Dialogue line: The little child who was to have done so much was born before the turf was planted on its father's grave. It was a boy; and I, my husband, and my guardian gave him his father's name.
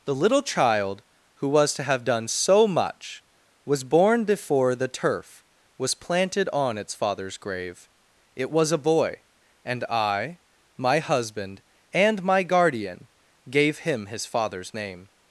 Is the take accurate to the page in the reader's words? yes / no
yes